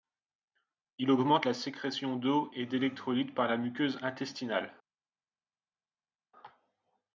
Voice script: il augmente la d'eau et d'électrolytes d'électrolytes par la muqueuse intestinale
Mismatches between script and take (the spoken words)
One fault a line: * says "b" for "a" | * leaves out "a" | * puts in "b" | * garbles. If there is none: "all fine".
* puts in "sécrétion"
* leaves out "d'électrolytes"